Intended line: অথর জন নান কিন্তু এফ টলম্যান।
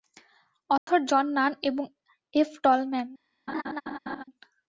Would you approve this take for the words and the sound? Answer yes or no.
no